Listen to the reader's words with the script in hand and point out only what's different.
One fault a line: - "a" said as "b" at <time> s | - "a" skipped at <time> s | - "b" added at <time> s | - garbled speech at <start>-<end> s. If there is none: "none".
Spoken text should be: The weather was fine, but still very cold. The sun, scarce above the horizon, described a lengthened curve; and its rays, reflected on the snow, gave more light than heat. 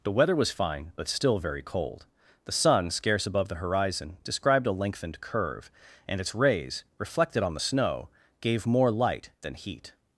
none